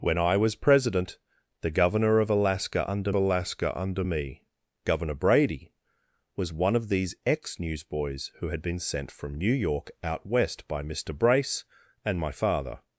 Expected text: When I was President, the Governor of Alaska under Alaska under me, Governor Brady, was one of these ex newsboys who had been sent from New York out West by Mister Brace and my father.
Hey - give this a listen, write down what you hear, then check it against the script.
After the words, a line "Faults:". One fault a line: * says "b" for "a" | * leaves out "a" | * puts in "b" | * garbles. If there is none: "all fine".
When I was President, the Governor of Alaska under Alaska under me, Governor Brady, was one of these ex newsboys who had been sent from New York out West by Mister Brace and my father.
Faults:
all fine